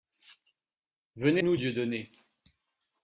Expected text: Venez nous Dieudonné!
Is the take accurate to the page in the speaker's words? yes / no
yes